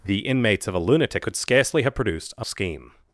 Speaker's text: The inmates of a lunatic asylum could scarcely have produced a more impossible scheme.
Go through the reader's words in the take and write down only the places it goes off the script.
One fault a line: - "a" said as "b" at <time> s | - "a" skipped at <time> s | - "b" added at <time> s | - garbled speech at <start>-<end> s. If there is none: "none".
- "asylum" skipped at 1.2 s
- "more impossible" skipped at 2.4 s